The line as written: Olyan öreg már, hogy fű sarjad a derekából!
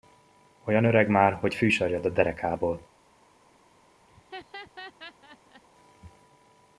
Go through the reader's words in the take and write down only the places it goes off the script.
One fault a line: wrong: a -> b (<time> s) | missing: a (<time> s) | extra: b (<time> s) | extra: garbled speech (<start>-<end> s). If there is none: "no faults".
no faults